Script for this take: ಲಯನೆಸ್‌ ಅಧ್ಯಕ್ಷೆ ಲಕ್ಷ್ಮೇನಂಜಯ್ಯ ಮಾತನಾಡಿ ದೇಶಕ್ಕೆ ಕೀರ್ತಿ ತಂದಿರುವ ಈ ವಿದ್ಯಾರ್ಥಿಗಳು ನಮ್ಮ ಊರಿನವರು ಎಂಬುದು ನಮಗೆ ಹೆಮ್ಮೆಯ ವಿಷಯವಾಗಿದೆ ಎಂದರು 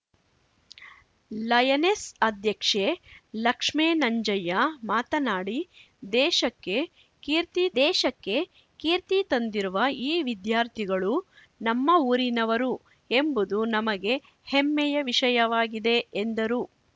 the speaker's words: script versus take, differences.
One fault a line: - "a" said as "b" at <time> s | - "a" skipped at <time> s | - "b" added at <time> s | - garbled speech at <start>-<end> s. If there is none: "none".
- "ದೇಶಕ್ಕೆ ಕೀರ್ತಿ" added at 7.8 s